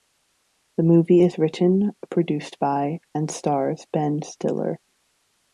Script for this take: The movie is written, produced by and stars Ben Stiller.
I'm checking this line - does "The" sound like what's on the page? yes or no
yes